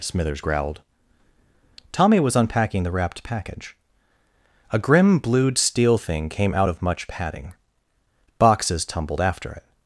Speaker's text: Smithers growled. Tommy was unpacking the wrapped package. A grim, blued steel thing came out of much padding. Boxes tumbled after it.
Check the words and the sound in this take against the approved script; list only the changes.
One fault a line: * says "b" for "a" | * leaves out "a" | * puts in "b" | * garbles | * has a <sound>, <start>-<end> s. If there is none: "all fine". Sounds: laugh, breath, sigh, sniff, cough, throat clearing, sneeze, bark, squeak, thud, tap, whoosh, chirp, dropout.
all fine